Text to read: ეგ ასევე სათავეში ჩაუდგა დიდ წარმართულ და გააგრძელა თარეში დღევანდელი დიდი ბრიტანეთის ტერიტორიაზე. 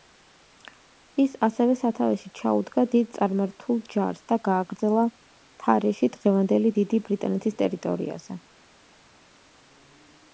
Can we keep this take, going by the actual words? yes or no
no